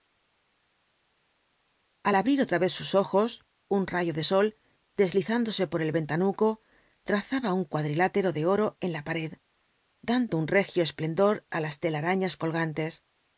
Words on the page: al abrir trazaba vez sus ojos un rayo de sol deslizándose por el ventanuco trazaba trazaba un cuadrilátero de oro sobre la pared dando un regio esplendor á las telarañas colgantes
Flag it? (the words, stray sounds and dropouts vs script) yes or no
yes